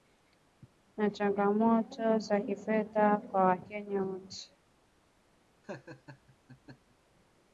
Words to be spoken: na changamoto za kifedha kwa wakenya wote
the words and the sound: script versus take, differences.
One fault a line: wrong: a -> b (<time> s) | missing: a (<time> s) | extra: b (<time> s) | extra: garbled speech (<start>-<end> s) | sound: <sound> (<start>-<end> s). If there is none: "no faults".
sound: laugh (5.6-7.0 s)